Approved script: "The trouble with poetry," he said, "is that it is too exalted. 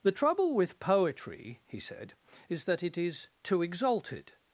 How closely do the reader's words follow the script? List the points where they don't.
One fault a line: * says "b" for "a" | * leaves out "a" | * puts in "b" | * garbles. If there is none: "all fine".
all fine